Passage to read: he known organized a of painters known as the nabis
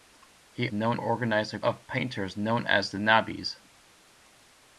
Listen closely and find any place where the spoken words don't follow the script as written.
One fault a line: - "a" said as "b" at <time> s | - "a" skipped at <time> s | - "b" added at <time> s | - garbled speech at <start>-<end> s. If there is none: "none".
none